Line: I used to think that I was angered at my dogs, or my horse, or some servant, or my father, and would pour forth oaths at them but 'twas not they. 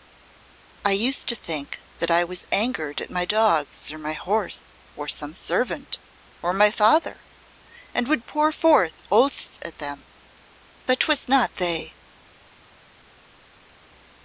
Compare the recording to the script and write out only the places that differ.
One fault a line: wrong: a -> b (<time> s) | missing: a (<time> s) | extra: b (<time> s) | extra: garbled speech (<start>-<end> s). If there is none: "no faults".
no faults